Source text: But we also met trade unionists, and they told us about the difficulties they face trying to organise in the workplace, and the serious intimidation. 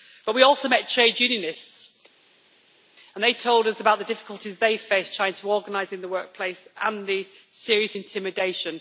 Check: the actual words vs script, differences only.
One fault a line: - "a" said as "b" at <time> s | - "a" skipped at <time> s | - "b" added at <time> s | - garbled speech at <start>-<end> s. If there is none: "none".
none